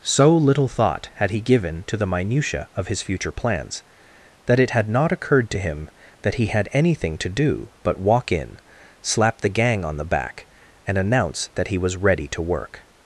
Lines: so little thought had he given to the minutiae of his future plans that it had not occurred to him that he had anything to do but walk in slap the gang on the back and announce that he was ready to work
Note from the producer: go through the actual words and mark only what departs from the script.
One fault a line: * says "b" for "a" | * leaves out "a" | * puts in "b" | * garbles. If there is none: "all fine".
all fine